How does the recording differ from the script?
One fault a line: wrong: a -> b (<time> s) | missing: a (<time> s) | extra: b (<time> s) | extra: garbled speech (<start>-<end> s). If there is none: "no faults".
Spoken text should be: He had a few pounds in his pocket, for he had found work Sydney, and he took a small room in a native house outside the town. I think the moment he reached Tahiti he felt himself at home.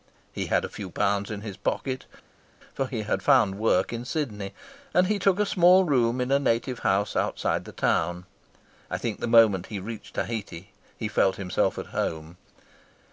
extra: in (3.9 s)